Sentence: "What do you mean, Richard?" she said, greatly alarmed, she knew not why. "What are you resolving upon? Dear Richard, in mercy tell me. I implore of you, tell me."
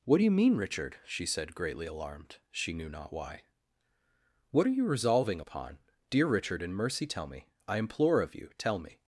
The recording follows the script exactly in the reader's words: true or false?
true